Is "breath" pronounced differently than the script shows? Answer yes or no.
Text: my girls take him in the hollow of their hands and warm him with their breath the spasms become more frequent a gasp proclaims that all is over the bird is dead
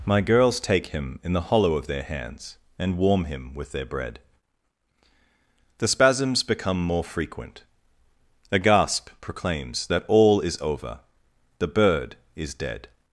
yes